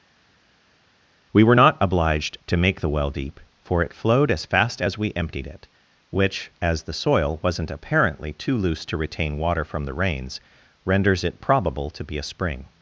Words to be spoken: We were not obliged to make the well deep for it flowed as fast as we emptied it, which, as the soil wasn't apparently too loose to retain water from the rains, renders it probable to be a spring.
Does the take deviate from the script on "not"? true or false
false